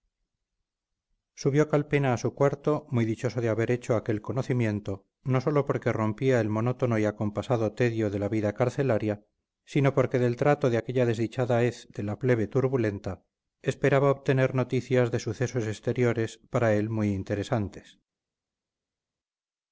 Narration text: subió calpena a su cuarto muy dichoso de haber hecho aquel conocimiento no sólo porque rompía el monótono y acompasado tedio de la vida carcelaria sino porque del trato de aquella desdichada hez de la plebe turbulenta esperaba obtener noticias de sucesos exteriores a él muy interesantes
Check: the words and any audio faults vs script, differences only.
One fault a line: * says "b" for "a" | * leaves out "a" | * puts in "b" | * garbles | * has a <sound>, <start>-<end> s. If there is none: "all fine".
* says "para" for "a"